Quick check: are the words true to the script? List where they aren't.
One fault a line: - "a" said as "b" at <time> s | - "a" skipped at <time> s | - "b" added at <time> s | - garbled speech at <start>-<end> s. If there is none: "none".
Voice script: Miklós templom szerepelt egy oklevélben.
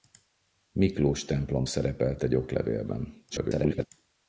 - garbled speech at 3.3-3.9 s